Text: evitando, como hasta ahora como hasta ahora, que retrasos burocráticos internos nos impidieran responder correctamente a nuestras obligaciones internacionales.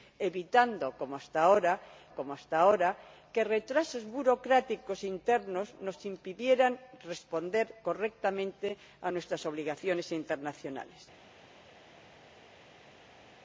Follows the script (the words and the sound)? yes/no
yes